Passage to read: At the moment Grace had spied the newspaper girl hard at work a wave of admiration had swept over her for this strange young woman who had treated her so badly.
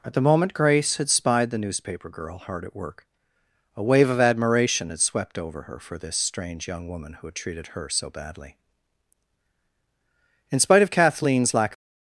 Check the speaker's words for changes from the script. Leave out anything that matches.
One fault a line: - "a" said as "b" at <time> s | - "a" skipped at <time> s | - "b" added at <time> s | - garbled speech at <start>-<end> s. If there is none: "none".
- "In spite of Kathleen's lack of" added at 10.5 s